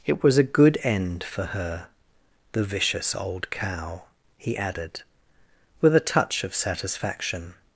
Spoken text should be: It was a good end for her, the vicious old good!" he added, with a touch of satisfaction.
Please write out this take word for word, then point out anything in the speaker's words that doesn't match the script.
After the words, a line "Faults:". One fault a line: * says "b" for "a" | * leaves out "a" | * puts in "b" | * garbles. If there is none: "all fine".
It was a good end for her, the vicious old cow!" he added, with a touch of satisfaction.
Faults:
* says "cow" for "good"